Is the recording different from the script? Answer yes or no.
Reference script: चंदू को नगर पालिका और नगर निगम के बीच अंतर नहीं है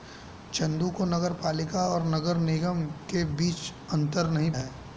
no